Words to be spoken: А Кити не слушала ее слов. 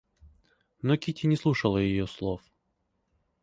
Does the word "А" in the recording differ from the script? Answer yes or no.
yes